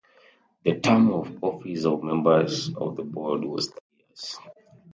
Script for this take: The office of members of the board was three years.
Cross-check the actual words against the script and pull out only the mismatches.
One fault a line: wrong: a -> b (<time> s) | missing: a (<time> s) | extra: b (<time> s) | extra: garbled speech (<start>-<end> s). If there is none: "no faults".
extra: term of (0.8 s)